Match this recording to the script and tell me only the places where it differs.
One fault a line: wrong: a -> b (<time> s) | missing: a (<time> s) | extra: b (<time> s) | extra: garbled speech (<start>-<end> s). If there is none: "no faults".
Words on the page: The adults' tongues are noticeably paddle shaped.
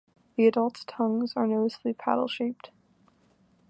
no faults